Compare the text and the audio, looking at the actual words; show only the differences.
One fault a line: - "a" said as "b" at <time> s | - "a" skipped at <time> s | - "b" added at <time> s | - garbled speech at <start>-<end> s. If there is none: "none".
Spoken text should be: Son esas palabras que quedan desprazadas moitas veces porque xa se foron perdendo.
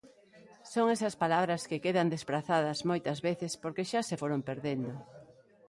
none